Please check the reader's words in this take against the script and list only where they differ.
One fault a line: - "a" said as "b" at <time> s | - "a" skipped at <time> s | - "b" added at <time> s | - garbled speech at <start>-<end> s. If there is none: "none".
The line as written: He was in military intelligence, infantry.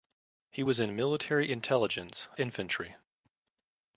none